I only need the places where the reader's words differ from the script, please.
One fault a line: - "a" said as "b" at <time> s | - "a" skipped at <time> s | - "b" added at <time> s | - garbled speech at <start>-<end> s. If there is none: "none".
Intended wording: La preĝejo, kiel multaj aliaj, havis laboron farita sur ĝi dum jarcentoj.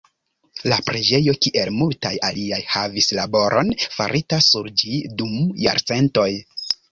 none